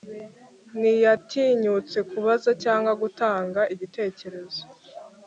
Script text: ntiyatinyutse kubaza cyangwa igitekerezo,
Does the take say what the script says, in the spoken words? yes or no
no